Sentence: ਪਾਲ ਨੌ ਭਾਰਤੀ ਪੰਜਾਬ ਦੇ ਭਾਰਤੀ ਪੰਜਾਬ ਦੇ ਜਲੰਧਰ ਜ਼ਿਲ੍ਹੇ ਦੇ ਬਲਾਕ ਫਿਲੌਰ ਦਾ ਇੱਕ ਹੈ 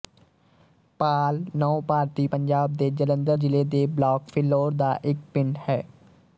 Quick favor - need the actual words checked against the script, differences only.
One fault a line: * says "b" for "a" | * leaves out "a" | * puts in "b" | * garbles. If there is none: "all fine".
* leaves out "ਭਾਰਤੀ ਪੰਜਾਬ ਦੇ"
* puts in "ਪਿੰਡ"